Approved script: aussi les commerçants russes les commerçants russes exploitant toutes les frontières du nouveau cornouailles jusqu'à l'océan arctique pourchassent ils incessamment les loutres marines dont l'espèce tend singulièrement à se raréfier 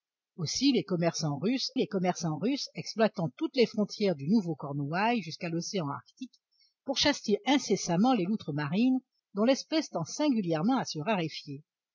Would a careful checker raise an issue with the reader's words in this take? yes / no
no